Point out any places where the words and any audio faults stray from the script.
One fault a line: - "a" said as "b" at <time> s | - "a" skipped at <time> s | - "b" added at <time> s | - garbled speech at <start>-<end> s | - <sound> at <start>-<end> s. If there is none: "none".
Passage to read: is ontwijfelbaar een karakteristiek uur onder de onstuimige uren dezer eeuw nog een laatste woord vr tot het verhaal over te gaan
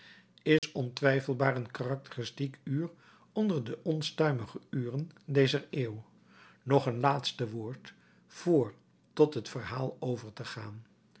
- dropout at 0.6-0.6 s